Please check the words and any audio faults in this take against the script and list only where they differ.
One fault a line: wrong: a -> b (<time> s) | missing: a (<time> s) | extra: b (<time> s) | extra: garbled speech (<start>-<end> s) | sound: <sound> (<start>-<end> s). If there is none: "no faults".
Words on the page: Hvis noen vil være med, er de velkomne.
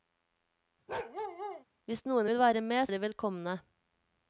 sound: bark (0.9-1.6 s)